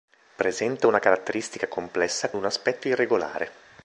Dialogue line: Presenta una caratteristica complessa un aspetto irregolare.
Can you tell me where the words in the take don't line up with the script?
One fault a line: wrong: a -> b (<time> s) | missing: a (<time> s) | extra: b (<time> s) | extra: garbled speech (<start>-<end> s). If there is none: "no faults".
no faults